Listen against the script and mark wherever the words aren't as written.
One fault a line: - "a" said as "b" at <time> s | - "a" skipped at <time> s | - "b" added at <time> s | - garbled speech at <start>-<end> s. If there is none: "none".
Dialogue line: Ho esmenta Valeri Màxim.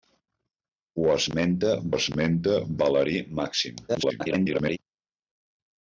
- "esmenta" added at 1.9 s
- garbled speech at 3.9-4.8 s